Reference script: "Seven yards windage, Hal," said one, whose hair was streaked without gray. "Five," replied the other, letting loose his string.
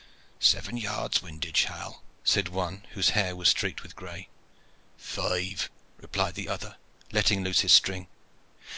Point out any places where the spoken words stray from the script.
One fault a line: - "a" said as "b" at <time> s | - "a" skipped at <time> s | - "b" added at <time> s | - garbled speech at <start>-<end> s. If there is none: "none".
- "without" said as "with" at 3.8 s